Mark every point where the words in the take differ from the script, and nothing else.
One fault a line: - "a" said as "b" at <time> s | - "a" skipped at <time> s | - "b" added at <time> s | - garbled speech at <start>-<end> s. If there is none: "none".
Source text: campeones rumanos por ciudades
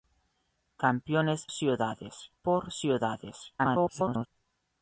- "rumanos" said as "ciudades" at 1.5 s
- garbled speech at 3.6-4.3 s